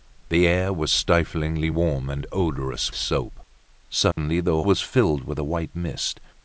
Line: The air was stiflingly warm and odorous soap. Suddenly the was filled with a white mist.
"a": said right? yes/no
yes